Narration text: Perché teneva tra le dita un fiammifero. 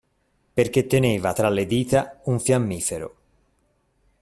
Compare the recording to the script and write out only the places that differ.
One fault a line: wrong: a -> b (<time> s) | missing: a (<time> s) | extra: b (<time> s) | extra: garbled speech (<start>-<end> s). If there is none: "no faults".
no faults